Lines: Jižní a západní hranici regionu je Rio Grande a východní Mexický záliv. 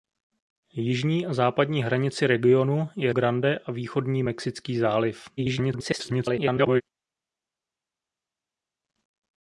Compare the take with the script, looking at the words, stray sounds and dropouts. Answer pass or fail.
fail